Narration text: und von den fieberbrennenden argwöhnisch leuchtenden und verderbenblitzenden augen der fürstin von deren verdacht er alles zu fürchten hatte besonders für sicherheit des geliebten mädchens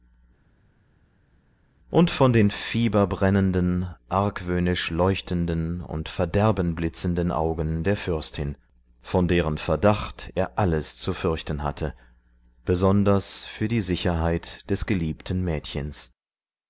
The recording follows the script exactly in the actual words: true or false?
false